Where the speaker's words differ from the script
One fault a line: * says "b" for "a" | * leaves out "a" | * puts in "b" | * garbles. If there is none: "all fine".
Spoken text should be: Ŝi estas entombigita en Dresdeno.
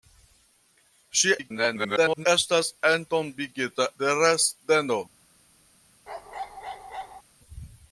* garbles
* leaves out "en"